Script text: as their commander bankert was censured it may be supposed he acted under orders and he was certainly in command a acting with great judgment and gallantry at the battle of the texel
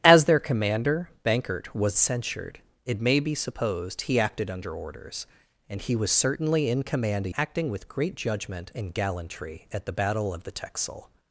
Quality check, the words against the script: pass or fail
pass